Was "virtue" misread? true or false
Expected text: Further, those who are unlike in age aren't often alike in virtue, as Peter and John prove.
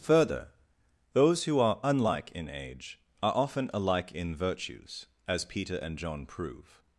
true